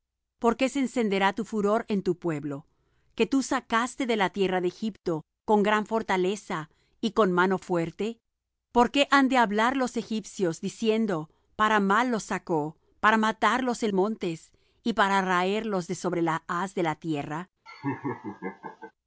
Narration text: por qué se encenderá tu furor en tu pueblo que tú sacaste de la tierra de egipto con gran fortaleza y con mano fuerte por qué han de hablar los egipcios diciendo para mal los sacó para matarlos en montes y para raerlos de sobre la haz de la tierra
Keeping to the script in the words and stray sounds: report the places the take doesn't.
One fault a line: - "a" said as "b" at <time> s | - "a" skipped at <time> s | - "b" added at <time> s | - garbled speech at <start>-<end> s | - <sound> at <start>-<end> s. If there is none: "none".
- laugh at 17.7-18.9 s